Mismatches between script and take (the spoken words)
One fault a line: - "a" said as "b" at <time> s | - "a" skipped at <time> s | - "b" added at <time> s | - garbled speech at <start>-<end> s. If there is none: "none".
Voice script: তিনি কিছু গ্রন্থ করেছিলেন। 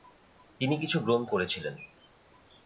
none